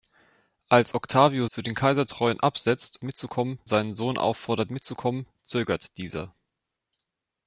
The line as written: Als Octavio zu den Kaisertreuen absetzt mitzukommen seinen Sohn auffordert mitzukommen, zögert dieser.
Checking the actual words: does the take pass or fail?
pass